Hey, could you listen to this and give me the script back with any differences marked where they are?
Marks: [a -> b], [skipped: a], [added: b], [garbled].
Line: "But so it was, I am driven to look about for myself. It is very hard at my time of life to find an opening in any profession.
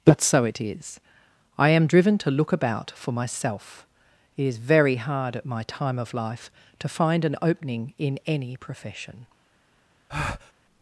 "But so it [was, -> is] I am driven to look about for myself. It is very hard at my time of life to find an opening in any profession.